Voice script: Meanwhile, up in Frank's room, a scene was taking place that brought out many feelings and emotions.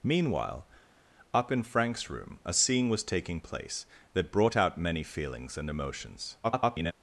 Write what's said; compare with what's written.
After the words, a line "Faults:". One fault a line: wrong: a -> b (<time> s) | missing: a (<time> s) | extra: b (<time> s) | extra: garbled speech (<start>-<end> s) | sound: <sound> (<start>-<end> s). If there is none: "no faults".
Meanwhile, up in Frank's room, a scene was taking place that brought out many feelings and emotions. [garbled]
Faults:
extra: garbled speech (6.4-6.9 s)